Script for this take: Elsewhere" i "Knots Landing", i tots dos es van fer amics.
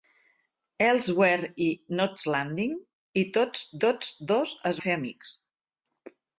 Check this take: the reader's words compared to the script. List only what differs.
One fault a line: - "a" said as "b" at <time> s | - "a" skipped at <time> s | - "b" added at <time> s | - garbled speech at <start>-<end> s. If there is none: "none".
- "tots" added at 3.8 s
- "van" skipped at 4.8 s